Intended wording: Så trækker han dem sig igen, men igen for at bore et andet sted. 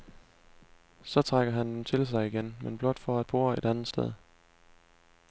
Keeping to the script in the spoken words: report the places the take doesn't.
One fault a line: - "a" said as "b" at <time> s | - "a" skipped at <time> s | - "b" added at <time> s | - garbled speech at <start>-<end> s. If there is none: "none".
- "til" added at 1.8 s
- "igen" said as "blot" at 2.8 s